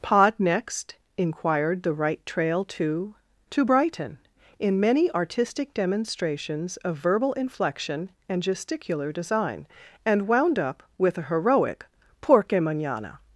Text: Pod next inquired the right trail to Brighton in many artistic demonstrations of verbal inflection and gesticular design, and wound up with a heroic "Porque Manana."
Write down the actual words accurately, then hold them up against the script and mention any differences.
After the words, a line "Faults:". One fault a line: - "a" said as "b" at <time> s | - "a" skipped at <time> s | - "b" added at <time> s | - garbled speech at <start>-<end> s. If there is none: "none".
Pod next inquired the right trail to to Brighton in many artistic demonstrations of verbal inflection and gesticular design, and wound up with a heroic "Porque Manana."
Faults:
- "to" added at 3.5 s